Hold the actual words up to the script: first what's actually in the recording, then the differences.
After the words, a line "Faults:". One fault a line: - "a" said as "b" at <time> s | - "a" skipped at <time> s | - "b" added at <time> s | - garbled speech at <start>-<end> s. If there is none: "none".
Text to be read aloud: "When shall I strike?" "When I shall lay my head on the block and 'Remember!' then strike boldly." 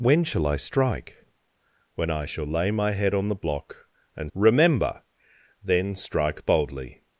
"When shall I strike?" "When I shall lay my head on the block and 'Remember!' then strike boldly."
Faults:
none